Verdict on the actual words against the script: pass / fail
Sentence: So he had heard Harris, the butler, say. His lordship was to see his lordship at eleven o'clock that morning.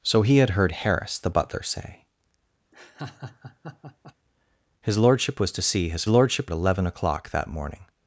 pass